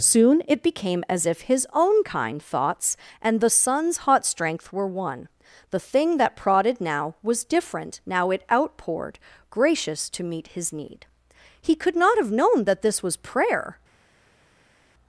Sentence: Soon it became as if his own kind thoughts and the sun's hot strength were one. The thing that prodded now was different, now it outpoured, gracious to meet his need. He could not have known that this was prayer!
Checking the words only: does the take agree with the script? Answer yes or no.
yes